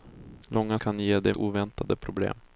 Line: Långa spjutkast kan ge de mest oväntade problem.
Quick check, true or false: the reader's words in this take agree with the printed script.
false